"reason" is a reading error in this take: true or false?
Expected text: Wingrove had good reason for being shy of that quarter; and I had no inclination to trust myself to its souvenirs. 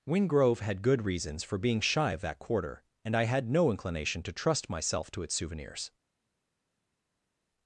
true